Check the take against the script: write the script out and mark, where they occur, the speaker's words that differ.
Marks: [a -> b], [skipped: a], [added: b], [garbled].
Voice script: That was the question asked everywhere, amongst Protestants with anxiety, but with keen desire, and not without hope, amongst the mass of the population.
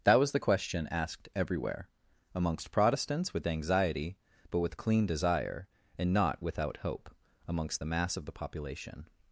That was the question asked everywhere, amongst Protestants with anxiety, but with [keen -> clean] desire, and not without hope, amongst the mass of the population.